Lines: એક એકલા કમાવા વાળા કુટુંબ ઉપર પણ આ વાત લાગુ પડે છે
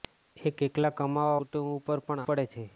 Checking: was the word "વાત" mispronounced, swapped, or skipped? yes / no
yes